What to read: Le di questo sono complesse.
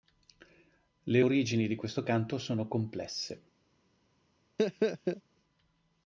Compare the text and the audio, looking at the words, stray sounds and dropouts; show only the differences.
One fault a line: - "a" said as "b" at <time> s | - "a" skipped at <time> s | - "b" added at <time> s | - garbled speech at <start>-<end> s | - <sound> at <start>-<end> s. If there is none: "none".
- "origini" added at 1.2 s
- "canto" added at 2.0 s
- laugh at 4.6-5.2 s